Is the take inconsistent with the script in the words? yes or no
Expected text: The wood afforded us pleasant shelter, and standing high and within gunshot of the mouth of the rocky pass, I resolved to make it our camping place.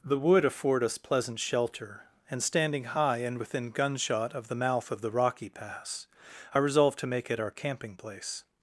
yes